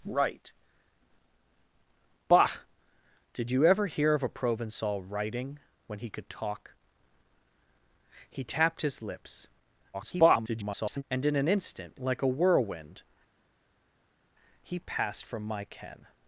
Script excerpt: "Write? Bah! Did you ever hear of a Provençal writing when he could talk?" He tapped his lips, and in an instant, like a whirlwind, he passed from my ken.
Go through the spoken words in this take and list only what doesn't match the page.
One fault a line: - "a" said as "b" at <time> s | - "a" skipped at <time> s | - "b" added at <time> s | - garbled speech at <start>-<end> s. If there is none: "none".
- garbled speech at 9.9-11.0 s